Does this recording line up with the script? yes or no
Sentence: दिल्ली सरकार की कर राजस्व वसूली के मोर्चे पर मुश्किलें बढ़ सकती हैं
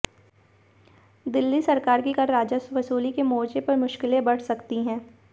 yes